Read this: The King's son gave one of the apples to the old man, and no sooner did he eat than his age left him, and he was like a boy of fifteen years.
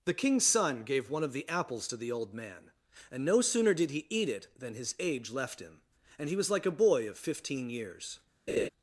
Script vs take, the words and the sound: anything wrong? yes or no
yes